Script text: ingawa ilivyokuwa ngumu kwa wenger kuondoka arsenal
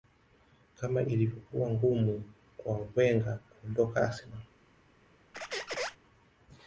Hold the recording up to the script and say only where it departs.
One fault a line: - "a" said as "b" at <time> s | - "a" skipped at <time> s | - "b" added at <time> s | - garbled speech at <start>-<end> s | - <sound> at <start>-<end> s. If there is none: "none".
- "ingawa" said as "kama" at 0.8 s
- squeak at 5.3-6.0 s